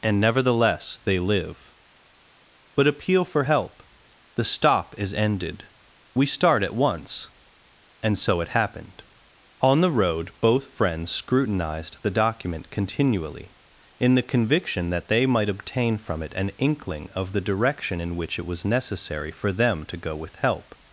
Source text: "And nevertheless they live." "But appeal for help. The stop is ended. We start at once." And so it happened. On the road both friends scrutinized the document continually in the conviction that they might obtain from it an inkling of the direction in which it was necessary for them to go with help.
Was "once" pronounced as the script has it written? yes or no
yes